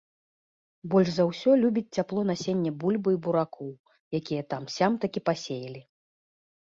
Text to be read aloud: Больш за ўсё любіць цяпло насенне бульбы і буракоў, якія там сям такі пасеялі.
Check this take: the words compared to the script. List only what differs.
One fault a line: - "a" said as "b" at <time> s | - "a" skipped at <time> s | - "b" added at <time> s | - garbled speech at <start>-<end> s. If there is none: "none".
none